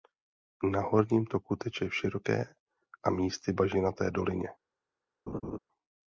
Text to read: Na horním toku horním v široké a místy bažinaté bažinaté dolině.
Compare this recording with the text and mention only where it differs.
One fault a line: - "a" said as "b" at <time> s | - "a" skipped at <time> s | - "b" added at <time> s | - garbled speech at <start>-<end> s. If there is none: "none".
- "horním" said as "teče" at 1.6 s
- "bažinaté" skipped at 4.1 s